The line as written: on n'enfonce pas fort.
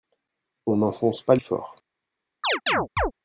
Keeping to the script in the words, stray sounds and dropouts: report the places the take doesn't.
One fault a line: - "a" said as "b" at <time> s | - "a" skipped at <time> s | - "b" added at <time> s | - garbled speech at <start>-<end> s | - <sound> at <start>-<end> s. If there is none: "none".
- chirp at 2.4-3.1 s